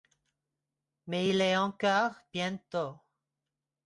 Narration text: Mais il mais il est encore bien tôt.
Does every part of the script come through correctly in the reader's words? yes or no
no